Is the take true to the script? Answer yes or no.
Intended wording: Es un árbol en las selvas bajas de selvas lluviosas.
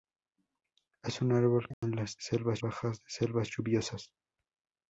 yes